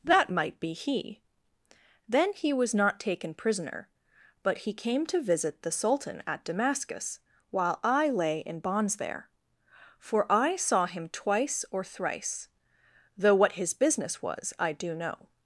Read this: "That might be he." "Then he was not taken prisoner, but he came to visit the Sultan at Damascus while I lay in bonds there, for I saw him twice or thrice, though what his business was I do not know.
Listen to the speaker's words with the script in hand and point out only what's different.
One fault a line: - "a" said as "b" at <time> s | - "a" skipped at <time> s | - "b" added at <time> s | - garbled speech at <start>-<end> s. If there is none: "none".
- "not" skipped at 14.9 s